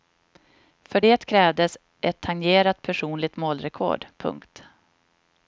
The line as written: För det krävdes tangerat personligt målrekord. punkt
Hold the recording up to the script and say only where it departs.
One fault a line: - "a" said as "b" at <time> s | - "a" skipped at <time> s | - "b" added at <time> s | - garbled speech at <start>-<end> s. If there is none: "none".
- "ett" added at 2.0 s